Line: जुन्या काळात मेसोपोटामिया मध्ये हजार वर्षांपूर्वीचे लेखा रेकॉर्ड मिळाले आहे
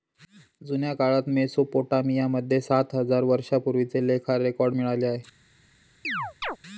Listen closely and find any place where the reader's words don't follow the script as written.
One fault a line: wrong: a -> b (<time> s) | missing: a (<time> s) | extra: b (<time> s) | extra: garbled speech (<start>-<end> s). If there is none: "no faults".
extra: सात (2.6 s)